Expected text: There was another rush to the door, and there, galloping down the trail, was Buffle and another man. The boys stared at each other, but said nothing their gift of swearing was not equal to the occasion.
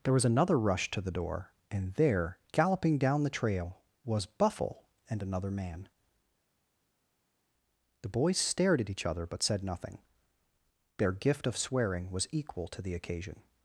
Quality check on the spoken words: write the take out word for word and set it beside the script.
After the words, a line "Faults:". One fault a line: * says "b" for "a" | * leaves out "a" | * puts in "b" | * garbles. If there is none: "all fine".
There was another rush to the door, and there, galloping down the trail, was Buffle and another man. The boys stared at each other, but said nothing their gift of swearing was equal to the occasion.
Faults:
* leaves out "not"